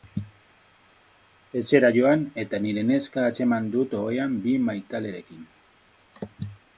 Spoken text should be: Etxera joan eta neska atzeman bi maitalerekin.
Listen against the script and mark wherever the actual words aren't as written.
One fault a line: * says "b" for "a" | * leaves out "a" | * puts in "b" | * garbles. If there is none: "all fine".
* puts in "nire"
* puts in "dut ohean"